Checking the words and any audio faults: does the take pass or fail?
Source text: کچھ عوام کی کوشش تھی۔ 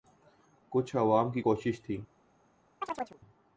fail